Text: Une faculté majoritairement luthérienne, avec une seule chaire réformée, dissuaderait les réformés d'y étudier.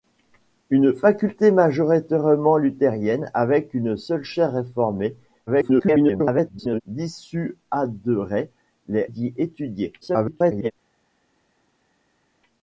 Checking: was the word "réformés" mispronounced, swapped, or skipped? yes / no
yes